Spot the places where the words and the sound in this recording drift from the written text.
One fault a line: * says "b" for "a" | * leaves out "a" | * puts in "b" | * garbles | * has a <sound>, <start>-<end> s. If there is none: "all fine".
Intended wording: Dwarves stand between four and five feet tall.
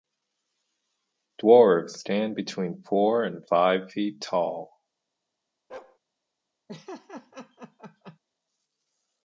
* has a bark, 5.7-6.0 s
* has a laugh, 6.7-8.2 s